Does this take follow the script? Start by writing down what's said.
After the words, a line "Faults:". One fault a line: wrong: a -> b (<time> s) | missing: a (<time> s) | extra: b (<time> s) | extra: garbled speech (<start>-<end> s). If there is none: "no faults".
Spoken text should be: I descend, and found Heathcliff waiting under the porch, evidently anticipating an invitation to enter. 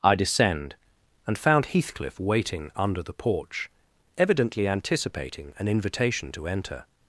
I descend, and found Heathcliff waiting under the porch, evidently anticipating an invitation to enter.
Faults:
no faults